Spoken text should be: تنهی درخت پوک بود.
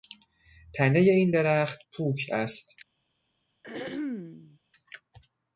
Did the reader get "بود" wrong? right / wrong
wrong